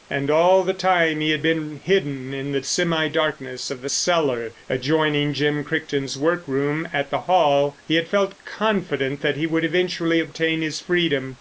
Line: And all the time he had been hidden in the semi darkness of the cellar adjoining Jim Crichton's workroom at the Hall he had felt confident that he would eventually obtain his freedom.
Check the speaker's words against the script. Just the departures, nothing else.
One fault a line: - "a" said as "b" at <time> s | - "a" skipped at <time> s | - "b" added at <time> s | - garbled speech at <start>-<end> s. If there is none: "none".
none